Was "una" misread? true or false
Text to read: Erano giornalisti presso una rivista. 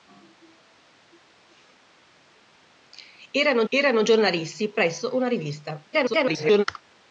false